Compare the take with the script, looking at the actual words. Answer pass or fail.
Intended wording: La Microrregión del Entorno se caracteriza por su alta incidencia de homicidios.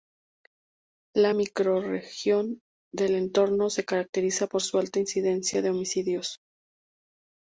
pass